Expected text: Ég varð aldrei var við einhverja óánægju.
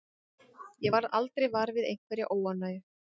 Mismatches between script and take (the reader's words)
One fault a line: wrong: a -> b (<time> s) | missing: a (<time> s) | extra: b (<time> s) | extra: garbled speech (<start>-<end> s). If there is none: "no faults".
no faults